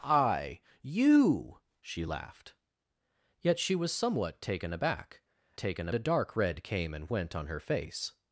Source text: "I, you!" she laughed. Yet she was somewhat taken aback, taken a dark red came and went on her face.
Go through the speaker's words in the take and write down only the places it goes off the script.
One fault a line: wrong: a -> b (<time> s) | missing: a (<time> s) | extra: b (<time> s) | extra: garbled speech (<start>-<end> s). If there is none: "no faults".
no faults